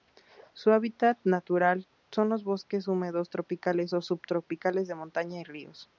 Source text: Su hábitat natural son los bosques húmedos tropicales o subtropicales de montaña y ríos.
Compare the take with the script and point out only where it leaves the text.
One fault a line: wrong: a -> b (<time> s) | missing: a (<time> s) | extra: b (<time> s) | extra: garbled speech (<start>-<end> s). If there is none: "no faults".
no faults